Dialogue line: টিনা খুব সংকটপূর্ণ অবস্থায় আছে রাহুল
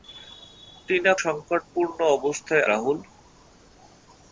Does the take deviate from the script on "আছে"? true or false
true